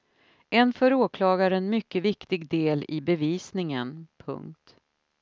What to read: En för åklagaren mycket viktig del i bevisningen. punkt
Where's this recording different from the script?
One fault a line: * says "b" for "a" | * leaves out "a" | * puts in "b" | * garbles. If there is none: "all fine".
all fine